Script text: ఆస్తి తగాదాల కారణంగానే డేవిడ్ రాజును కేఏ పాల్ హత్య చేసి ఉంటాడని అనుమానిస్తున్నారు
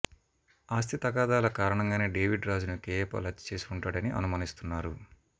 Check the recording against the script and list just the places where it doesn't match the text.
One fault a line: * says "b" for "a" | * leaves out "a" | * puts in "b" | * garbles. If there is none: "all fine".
all fine